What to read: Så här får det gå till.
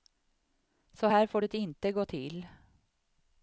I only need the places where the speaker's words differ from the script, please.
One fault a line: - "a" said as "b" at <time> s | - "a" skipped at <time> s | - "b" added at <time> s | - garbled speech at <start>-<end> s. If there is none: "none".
- "inte" added at 1.5 s